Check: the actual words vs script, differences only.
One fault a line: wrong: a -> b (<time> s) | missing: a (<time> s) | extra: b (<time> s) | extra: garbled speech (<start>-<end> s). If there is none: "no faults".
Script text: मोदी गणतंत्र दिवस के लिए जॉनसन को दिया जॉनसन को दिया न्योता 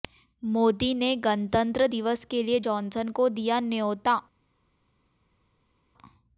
extra: ने (0.9 s)
missing: जॉनसन को दिया (3.6 s)